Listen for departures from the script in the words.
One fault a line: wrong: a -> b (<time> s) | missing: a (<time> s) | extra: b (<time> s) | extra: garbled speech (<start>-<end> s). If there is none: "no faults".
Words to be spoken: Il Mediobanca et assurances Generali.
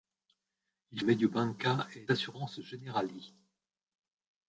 no faults